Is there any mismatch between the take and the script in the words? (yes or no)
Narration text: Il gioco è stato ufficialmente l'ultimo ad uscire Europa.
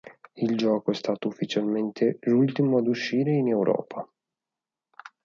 yes